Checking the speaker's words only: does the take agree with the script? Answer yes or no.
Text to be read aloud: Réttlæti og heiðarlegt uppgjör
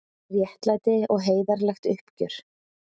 yes